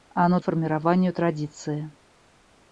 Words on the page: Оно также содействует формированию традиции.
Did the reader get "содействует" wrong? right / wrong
wrong